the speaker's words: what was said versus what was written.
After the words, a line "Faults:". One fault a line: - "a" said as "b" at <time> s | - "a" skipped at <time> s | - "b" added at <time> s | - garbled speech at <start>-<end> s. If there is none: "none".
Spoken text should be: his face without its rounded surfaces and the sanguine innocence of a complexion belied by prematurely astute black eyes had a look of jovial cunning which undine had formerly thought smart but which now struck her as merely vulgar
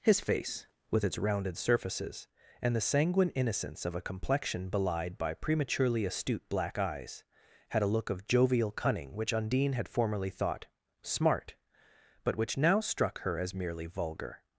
his face with its rounded surfaces and the sanguine innocence of a complexion belied by prematurely astute black eyes had a look of jovial cunning which undine had formerly thought smart but which now struck her as merely vulgar
Faults:
- "without" said as "with" at 0.9 s